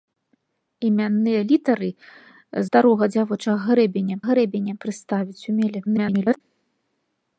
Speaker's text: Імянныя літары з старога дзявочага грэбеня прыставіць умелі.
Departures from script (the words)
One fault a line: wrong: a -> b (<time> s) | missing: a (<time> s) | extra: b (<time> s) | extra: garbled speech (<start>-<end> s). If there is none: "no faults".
missing: з (1.9 s)
extra: грэбеня (4.3 s)
extra: garbled speech (5.9-6.4 s)